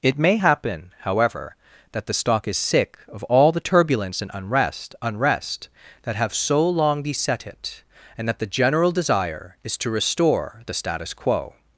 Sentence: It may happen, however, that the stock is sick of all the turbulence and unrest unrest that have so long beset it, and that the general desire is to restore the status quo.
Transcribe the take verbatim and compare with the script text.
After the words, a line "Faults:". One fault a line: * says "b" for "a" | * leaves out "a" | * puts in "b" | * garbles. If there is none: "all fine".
It may happen, however, that the stock is sick of all the turbulence and unrest unrest that have so long beset it, and that the general desire is to restore the status quo.
Faults:
all fine